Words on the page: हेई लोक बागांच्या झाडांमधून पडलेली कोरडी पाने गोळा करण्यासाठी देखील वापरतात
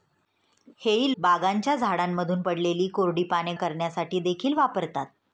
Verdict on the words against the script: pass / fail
fail